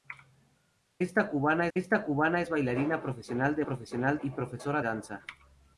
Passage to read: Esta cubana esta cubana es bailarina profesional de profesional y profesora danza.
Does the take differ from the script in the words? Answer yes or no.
no